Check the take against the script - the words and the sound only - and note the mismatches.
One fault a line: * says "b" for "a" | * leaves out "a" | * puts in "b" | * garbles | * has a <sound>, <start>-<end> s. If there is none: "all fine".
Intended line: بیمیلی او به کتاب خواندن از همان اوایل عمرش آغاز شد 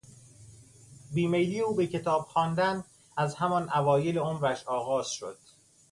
all fine